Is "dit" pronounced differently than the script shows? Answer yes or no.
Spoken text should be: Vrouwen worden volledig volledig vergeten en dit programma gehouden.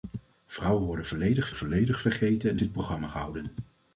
no